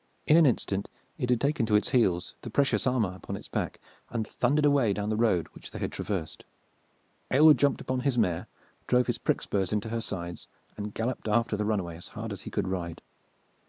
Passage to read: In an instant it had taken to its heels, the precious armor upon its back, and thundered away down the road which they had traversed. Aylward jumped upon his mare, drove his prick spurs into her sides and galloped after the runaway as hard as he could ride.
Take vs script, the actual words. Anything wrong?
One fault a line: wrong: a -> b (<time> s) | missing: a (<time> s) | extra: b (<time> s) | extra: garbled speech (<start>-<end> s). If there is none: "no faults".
no faults